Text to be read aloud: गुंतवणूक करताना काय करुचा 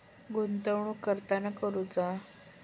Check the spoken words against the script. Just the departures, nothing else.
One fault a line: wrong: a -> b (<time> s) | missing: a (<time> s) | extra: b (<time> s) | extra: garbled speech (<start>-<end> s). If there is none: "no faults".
missing: काय (1.5 s)